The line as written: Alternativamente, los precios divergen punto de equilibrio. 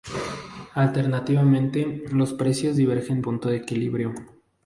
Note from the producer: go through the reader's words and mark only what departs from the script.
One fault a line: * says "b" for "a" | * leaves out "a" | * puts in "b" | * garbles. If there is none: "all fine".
all fine